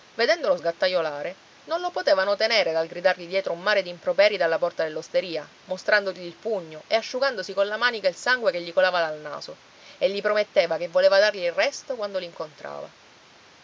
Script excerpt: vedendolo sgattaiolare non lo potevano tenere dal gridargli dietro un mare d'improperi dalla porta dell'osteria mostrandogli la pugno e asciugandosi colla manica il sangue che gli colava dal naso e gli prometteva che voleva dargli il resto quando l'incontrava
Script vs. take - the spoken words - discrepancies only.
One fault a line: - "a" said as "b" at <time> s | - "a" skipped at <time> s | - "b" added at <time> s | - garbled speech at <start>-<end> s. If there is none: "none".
- "la" said as "il" at 6.2 s